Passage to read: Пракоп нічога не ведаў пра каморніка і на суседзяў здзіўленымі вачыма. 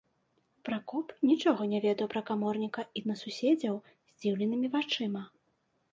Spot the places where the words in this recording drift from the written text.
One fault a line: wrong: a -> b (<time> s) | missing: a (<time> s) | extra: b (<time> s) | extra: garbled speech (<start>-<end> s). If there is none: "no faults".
no faults